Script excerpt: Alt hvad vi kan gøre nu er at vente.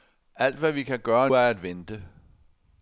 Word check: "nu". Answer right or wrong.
wrong